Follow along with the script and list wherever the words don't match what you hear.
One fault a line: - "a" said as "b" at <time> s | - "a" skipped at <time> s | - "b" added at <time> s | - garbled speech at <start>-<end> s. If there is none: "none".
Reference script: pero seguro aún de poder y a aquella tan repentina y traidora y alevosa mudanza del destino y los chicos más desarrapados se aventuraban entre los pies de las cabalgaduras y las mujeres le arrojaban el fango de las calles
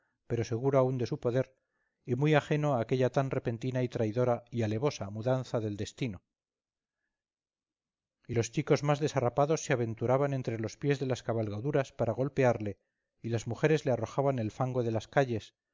- "su" added at 1.1 s
- "muy ajeno" added at 2.2 s
- "para golpearle" added at 11.9 s